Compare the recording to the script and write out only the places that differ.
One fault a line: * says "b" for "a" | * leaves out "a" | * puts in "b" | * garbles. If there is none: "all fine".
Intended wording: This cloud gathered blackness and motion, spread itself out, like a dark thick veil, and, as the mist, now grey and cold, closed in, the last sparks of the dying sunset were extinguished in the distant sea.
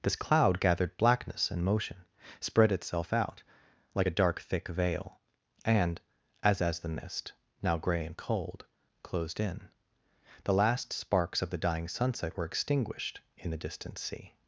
* puts in "as"